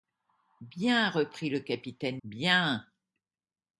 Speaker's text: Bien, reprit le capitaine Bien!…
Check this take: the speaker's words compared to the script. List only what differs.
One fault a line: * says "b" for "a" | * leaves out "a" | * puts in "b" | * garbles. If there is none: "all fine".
all fine